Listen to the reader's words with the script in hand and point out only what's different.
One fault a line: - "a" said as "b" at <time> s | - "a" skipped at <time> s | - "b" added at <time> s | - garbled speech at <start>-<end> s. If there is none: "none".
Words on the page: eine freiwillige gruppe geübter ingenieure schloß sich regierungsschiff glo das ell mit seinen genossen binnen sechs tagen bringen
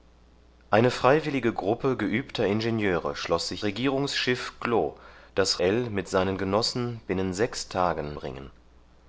none